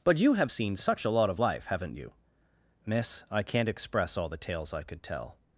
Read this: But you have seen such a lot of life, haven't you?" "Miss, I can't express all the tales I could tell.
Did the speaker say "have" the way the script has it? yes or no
yes